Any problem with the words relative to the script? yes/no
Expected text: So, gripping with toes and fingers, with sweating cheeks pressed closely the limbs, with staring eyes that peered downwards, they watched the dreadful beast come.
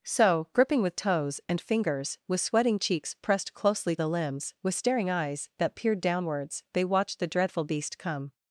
no